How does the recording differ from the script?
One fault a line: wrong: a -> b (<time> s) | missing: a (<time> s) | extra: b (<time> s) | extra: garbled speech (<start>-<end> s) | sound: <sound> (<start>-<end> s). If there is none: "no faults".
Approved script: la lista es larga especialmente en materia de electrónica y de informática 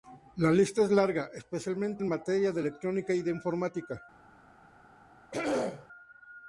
sound: throat clearing (5.3-5.9 s)